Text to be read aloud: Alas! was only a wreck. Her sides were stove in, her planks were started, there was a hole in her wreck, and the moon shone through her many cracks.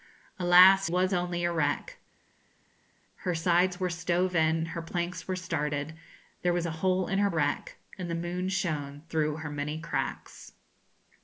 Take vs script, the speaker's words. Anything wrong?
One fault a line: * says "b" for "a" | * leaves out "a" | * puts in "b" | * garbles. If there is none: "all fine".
all fine